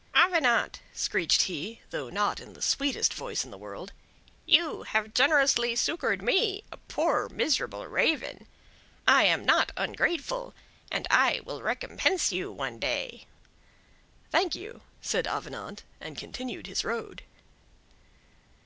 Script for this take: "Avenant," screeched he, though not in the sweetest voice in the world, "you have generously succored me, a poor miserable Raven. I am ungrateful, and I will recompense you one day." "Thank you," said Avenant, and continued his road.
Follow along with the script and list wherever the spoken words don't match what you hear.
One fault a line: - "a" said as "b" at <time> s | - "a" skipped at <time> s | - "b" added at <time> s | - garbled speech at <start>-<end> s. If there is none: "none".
- "not" added at 9.4 s